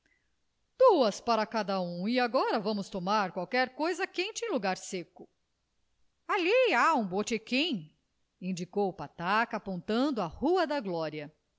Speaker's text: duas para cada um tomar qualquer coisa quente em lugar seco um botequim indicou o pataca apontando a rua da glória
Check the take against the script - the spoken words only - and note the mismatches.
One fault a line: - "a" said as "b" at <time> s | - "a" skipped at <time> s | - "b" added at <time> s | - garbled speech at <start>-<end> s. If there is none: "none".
- "e agora vamos" added at 2.1 s
- "ali há" added at 6.3 s